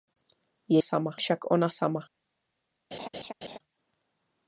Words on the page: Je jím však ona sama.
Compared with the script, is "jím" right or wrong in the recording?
wrong